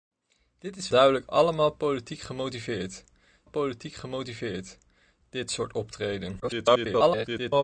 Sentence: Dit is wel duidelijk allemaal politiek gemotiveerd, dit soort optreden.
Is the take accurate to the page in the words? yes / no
no